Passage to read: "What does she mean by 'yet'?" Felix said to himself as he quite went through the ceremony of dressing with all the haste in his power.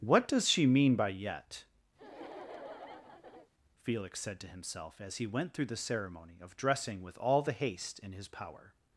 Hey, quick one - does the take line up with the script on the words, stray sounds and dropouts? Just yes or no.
no